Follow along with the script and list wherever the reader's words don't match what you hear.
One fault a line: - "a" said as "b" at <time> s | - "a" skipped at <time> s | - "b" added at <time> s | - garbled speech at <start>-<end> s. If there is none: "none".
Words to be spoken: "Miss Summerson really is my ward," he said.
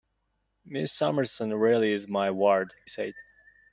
- "he" skipped at 2.7 s